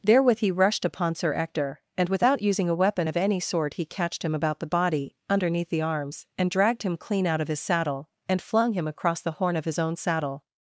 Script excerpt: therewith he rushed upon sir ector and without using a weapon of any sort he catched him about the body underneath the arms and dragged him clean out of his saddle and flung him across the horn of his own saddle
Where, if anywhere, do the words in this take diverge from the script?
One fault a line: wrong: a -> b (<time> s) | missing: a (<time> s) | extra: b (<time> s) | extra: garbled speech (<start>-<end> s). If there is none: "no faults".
no faults